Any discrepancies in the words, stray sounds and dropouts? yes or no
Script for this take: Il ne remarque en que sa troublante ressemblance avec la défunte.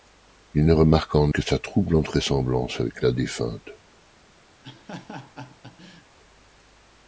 yes